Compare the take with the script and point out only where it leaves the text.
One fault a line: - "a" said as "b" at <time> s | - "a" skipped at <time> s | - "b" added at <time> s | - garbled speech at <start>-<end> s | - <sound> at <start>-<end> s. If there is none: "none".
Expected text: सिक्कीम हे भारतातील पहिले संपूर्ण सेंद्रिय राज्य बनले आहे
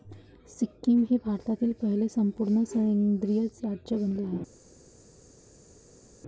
none